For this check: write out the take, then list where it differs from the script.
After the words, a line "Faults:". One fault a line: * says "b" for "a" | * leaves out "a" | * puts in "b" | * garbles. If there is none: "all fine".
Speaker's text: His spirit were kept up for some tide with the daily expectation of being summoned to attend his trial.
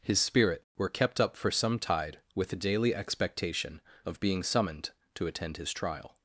His spirit were kept up for some tide with the daily expectation of being summoned to attend his trial.
Faults:
all fine